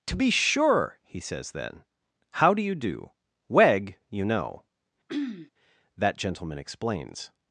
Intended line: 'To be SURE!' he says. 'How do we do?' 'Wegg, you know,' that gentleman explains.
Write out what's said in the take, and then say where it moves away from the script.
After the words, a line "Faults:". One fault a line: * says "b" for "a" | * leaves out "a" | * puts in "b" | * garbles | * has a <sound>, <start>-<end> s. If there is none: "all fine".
'To be SURE!' he says, then. 'How do you do?' 'Wegg, you know,' that gentleman explains.
Faults:
* puts in "then"
* says "you" for "we"
* has a throat clearing, 5.1-5.5 s